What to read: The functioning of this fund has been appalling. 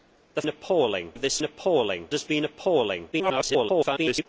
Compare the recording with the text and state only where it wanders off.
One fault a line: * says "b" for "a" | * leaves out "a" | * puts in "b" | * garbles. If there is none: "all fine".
* says "appalling" for "functioning"
* says "appalling" for "fund"
* garbles